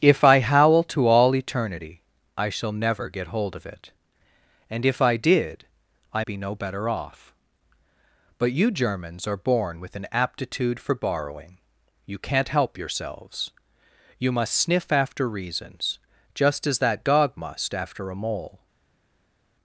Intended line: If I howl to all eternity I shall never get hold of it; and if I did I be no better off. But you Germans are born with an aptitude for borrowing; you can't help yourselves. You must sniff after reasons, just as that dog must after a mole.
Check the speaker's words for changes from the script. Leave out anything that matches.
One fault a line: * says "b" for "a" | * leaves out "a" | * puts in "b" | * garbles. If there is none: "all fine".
all fine